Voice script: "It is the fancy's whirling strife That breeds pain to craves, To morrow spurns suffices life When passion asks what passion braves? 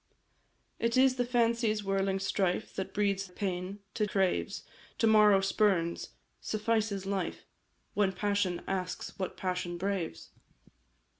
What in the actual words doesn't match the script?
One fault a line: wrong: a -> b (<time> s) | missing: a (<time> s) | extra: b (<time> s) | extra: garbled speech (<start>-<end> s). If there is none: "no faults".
no faults